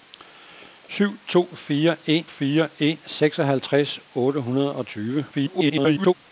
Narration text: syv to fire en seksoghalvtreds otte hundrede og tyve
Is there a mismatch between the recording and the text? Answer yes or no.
yes